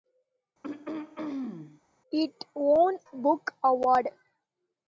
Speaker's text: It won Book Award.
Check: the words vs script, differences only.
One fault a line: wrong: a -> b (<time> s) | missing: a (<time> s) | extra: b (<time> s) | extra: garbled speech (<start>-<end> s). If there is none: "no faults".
no faults